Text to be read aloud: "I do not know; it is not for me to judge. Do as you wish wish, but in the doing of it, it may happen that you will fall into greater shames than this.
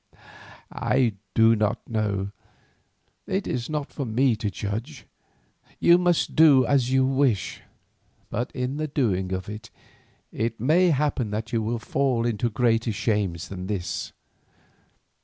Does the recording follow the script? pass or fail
fail